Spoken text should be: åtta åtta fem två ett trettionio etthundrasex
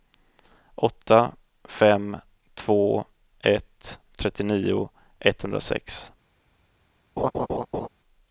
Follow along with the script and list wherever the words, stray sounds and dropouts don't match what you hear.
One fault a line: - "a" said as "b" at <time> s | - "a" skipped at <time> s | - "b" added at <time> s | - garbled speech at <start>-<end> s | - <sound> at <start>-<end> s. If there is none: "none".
- "åtta" skipped at 1.4 s
- laugh at 7.2-7.9 s